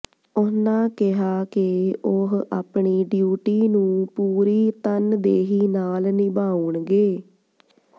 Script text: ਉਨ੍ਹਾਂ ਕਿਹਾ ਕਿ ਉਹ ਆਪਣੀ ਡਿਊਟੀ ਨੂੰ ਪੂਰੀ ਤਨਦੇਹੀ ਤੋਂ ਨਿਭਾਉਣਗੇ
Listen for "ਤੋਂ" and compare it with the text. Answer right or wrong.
wrong